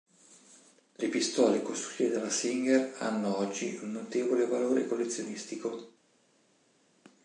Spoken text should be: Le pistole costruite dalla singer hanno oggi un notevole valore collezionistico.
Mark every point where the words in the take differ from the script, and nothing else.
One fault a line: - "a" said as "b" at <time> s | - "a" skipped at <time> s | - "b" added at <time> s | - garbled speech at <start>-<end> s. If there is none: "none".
none